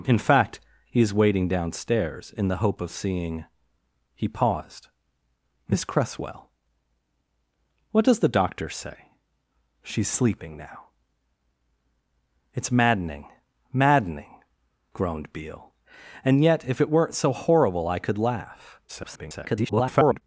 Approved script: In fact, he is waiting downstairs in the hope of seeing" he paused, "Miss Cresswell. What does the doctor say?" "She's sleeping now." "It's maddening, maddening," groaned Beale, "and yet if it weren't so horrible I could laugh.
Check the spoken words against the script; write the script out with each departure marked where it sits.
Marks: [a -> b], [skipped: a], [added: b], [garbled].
In fact, he is waiting downstairs in the hope of seeing" he paused, "Miss Cresswell. What does the doctor say?" "She's sleeping now." "It's maddening, maddening," groaned Beale, "and yet if it weren't so horrible I could laugh. [garbled]